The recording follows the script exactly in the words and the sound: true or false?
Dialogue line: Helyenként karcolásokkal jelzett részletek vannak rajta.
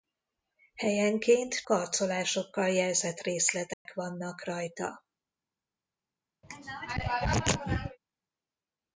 false